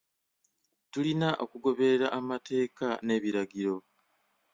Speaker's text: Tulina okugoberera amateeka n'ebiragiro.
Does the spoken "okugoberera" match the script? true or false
true